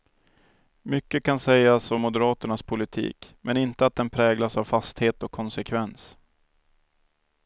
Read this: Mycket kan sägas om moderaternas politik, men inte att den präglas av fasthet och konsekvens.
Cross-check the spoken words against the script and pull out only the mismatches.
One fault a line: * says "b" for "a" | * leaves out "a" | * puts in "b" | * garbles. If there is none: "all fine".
all fine